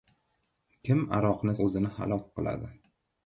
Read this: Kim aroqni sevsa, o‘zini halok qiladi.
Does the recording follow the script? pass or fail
fail